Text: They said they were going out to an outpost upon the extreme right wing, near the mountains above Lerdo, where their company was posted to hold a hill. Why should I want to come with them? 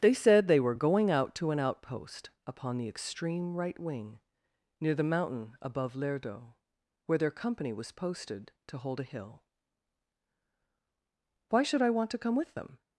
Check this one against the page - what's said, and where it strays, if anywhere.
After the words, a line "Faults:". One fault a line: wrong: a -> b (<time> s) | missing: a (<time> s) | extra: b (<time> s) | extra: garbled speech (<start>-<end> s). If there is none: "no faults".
They said they were going out to an outpost upon the extreme right wing, near the mountain above Lerdo, where their company was posted to hold a hill. Why should I want to come with them?
Faults:
wrong: mountains -> mountain (5.0 s)